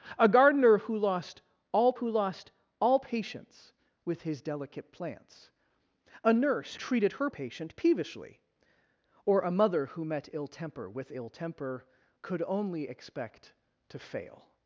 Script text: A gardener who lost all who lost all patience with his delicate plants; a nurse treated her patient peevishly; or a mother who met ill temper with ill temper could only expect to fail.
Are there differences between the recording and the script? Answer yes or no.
no